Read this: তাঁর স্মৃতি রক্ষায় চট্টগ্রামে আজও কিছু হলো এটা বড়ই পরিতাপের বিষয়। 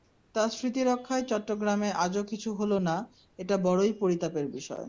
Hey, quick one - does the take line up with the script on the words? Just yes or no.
no